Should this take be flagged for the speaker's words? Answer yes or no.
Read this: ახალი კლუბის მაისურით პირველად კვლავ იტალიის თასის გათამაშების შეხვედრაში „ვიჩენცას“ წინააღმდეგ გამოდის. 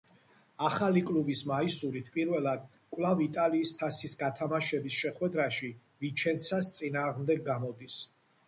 no